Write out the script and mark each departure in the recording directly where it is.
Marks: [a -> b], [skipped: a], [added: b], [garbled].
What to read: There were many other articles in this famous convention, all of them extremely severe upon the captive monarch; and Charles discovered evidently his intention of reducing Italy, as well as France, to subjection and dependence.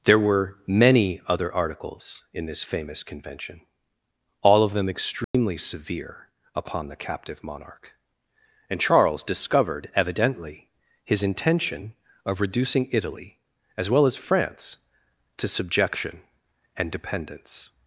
There were many other articles in this famous convention, all of them extremely severe upon the captive monarch; and Charles discovered evidently his intention of reducing Italy, as well as France, to subjection and dependence.